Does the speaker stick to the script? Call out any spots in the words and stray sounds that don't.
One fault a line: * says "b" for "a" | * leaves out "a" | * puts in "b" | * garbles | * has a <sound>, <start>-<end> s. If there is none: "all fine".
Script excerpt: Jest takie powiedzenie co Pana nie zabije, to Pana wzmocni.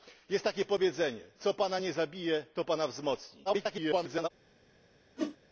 * garbles
* has a whoosh, 5.2-5.4 s